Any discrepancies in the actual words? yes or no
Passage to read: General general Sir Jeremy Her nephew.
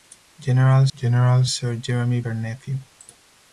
no